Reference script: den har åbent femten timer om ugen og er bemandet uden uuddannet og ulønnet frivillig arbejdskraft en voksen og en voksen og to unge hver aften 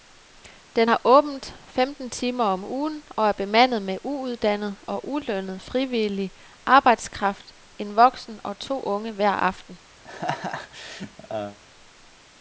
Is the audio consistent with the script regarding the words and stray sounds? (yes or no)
no